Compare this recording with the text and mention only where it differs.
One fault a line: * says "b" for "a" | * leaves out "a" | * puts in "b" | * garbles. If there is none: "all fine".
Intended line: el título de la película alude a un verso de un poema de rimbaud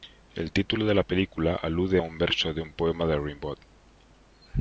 all fine